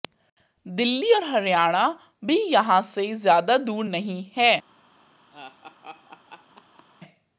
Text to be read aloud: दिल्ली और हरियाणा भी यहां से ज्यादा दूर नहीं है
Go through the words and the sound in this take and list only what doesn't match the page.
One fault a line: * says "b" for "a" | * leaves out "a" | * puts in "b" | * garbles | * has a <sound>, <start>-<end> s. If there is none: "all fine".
* has a laugh, 5.3-6.9 s